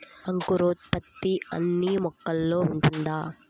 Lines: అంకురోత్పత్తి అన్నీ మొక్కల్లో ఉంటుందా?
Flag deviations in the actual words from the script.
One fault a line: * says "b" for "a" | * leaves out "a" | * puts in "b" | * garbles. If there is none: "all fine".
all fine